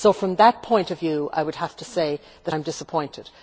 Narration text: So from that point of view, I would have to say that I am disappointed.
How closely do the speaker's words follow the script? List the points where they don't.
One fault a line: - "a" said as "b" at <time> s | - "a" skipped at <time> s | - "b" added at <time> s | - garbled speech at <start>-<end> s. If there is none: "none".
none